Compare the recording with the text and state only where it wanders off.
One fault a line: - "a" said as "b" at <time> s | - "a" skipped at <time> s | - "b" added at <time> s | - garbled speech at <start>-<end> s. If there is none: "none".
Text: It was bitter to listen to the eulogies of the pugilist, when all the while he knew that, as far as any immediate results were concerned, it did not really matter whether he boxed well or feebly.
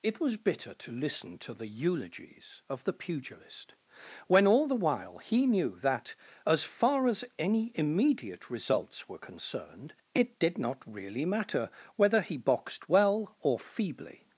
none